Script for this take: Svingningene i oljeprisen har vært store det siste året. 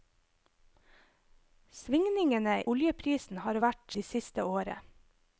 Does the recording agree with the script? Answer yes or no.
no